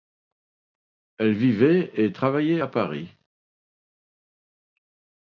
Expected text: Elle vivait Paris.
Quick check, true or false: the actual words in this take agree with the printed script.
false